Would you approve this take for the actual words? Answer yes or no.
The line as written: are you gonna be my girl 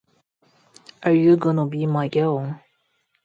yes